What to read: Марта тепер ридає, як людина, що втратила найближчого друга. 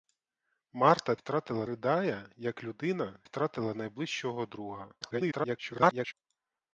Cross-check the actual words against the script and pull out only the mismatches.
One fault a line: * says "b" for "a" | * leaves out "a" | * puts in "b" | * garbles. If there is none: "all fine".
* says "втратила" for "тепер"
* leaves out "що"
* garbles